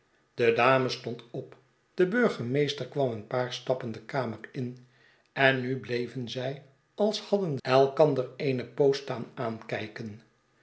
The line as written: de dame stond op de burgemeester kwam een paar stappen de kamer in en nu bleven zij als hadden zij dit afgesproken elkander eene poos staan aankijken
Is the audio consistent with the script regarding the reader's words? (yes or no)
no